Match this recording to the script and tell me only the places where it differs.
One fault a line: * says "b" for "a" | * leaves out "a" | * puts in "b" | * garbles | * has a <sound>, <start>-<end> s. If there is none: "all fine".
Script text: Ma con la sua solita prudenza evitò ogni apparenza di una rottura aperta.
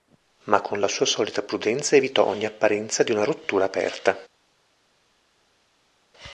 all fine